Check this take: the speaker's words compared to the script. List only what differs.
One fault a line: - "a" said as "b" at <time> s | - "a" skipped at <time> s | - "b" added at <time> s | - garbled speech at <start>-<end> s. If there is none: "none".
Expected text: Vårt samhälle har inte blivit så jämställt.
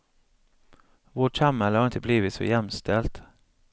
none